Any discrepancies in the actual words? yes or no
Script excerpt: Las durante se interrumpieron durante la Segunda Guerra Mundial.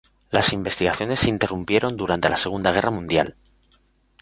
yes